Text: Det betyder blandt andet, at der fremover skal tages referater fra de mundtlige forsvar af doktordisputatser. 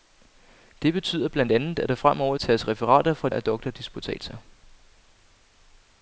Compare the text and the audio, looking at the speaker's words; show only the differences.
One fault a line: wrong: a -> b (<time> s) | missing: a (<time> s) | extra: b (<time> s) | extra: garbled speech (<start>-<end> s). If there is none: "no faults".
missing: skal (2.4 s)
missing: de mundtlige forsvar (3.3 s)